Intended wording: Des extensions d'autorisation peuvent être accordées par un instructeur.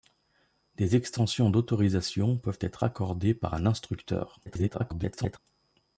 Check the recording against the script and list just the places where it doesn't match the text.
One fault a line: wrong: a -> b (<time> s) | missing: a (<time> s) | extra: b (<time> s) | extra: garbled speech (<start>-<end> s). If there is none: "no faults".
extra: garbled speech (4.5-5.4 s)